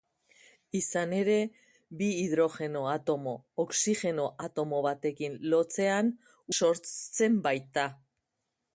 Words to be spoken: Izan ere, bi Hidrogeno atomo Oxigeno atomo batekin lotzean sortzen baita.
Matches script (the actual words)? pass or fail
pass